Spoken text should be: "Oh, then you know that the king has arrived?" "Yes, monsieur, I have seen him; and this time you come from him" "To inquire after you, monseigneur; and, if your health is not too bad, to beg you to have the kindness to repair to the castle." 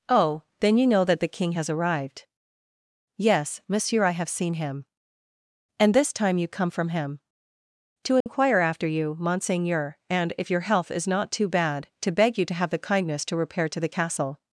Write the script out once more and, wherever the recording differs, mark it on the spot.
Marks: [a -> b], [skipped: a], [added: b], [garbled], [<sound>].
"Oh, then you know that the king has arrived?" "Yes, monsieur, I have seen him; and this time you come from him" "To inquire [dropout] after you, monseigneur; and, if your health is not too bad, to beg you to have the kindness to repair to the castle."